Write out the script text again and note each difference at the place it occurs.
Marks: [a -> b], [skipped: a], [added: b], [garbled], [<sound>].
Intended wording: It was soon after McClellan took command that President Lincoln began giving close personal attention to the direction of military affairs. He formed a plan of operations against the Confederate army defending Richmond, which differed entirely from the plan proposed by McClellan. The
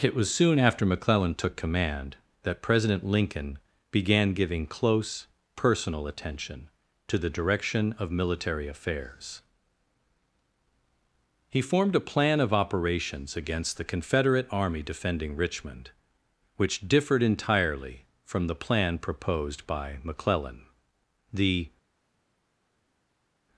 It was soon after McClellan took command that President Lincoln began giving close personal attention to the direction of military affairs. He formed a plan of operations against the Confederate army defending Richmond, which differed entirely from the plan proposed by McClellan. The